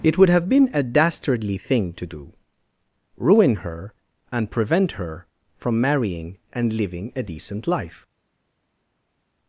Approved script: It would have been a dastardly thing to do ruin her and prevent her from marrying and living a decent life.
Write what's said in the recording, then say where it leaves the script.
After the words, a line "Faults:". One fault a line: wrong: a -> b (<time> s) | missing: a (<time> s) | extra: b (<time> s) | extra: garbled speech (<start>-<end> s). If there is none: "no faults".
It would have been a dastardly thing to do ruin her and prevent her from marrying and living a decent life.
Faults:
no faults